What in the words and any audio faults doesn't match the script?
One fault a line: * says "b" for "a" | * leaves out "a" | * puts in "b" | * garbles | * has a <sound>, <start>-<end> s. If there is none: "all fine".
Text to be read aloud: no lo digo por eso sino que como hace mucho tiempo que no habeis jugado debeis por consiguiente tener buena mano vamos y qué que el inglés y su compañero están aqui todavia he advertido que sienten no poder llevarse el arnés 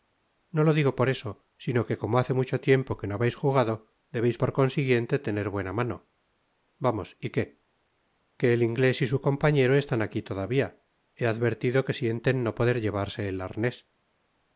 all fine